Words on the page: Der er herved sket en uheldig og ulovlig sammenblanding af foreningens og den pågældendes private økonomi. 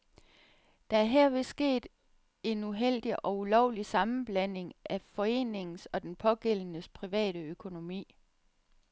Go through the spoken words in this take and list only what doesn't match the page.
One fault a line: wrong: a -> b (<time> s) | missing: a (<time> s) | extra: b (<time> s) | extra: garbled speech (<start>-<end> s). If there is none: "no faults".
no faults